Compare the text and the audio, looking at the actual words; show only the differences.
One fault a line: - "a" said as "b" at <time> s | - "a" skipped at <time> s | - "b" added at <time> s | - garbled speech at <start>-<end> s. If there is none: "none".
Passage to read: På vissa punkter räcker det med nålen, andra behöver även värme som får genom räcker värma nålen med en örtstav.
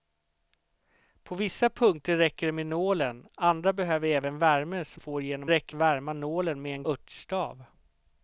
none